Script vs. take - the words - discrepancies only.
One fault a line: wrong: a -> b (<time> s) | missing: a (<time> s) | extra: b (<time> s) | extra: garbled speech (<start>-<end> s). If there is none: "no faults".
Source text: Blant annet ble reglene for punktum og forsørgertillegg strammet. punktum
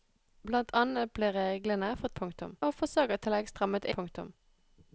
no faults